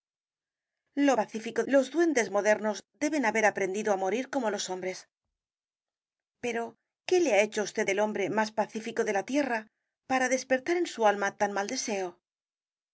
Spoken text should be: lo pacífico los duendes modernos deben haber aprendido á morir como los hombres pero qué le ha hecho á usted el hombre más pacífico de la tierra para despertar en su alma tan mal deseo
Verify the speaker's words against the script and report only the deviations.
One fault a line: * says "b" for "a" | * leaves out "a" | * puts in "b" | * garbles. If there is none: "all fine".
all fine